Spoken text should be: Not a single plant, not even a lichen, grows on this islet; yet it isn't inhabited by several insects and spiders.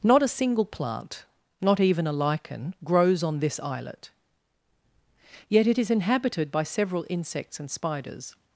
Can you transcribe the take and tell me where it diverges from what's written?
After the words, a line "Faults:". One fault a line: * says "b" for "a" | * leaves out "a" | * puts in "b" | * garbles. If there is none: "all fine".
Not a single plant, not even a lichen, grows on this islet; yet it is inhabited by several insects and spiders.
Faults:
* says "is" for "isn't"